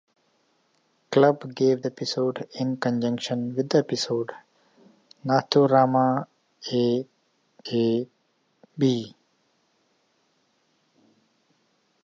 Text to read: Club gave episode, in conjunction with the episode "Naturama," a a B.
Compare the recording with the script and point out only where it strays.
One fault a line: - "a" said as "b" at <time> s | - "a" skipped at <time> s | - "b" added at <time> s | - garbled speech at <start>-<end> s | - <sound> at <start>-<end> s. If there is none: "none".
none